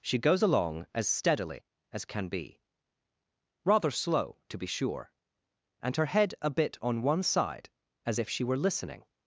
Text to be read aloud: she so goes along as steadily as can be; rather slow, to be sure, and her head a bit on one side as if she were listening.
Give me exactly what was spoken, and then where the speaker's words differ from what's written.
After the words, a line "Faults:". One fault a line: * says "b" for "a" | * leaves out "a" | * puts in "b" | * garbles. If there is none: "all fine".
she goes along as steadily as can be; rather slow, to be sure, and her head a bit on one side as if she were listening.
Faults:
* leaves out "so"